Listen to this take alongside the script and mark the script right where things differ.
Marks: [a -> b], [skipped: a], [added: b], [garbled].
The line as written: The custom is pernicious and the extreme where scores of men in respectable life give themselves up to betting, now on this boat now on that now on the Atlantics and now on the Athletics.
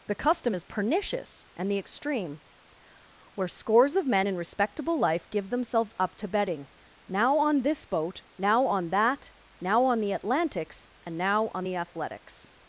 The custom is pernicious and the extreme where scores of men in respectable life give themselves up to betting, now on this boat now on that now on the Atlantics and now on the Athletics.